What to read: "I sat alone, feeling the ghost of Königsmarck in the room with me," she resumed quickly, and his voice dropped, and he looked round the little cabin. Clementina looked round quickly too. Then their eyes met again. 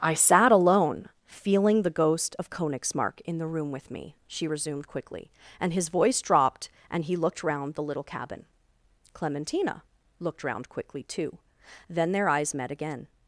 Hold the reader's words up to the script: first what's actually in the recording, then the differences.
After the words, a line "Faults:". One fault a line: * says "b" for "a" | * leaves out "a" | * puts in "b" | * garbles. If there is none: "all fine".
"I sat alone, feeling the ghost of Königsmarck in the room with me," she resumed quickly, and his voice dropped, and he looked round the little cabin. Clementina looked round quickly too. Then their eyes met again.
Faults:
all fine